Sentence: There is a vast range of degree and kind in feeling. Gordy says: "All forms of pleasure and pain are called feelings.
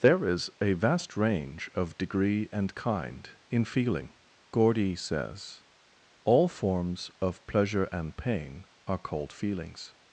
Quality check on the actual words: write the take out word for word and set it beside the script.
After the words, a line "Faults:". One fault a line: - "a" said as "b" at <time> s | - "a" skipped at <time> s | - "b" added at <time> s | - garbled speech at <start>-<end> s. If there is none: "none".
There is a vast range of degree and kind in feeling. Gordy says: "All forms of pleasure and pain are called feelings.
Faults:
none